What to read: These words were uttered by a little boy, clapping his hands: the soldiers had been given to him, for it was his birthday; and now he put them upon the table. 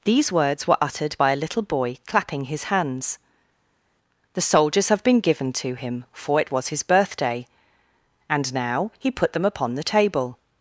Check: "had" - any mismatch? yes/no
yes